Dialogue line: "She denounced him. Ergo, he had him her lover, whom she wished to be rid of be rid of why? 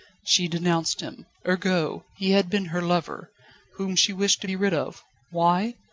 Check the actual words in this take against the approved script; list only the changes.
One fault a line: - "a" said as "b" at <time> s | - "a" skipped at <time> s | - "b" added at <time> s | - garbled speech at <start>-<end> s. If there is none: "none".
- "him" said as "been" at 2.5 s
- "be rid of" skipped at 5.0 s